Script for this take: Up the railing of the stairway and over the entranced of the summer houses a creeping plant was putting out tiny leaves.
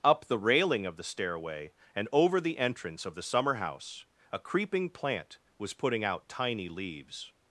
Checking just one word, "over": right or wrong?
right